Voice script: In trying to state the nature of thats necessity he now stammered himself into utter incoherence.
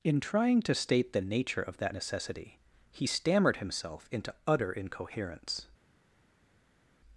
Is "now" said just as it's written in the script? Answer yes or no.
no